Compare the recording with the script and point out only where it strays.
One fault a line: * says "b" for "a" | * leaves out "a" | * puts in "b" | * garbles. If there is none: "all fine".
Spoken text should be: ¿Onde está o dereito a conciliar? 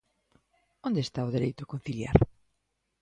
all fine